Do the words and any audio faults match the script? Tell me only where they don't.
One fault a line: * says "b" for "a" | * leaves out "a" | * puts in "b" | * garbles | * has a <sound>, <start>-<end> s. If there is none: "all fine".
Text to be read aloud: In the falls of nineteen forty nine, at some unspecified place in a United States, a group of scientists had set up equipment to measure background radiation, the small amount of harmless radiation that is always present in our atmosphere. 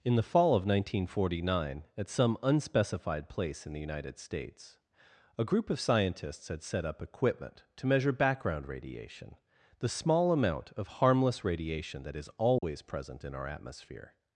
* says "fall" for "falls"
* says "the" for "a"
* has a dropout, 12.6-12.6 s